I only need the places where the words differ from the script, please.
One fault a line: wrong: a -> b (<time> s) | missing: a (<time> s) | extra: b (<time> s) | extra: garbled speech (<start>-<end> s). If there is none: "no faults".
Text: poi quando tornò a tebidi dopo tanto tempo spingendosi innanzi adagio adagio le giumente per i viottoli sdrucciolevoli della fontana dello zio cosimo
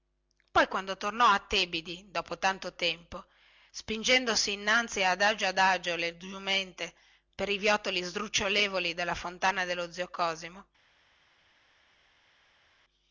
no faults